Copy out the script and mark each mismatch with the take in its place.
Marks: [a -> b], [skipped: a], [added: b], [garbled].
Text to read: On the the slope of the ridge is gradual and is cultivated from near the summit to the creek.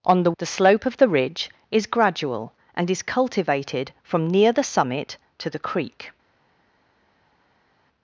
On the the slope of the ridge is gradual and is cultivated from near the summit to the creek.